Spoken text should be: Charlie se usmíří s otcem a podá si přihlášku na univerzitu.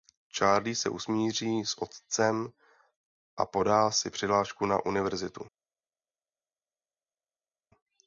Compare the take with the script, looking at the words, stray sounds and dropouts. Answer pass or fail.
pass